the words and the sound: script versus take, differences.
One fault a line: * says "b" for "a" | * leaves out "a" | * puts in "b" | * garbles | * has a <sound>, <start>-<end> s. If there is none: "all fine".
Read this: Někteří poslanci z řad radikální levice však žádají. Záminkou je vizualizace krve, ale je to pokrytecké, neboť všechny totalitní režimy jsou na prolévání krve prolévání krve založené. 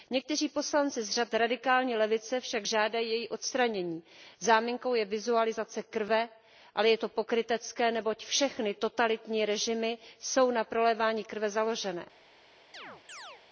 * puts in "její odstranění"
* leaves out "prolévání krve"
* has a chirp, 12.7-13.4 s